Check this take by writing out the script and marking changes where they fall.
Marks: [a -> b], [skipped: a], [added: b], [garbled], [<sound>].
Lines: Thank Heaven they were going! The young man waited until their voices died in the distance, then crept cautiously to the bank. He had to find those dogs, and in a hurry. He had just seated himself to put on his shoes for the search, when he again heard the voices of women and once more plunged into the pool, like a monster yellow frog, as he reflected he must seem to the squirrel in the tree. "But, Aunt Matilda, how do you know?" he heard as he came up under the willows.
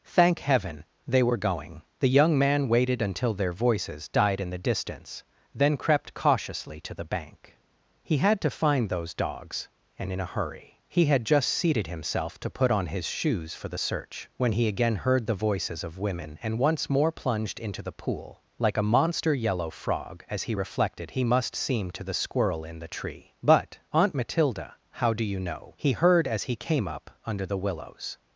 Thank Heaven they were going! The young man waited until their voices died in the distance, then crept cautiously to the bank. He had to find those dogs, and in a hurry. He had just seated himself to put on his shoes for the search, when he again heard the voices of women and once more plunged into the pool, like a monster yellow frog, as he reflected he must seem to the squirrel in the tree. "But, Aunt Matilda, how do you know?" he heard as he came up under the willows.